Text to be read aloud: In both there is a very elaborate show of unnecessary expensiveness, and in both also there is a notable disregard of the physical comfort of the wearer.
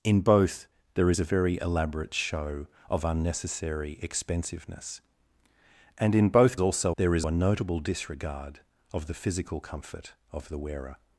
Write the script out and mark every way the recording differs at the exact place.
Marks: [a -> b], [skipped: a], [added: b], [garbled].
In both there is a very elaborate show of unnecessary expensiveness, and in both also there is a notable disregard of the physical comfort of the wearer.